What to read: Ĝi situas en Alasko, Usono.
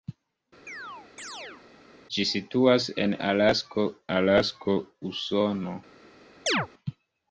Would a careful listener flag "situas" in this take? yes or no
no